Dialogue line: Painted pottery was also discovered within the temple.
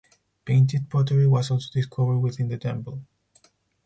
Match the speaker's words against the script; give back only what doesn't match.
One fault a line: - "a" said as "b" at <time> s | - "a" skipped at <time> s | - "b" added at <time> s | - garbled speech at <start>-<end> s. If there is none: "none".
none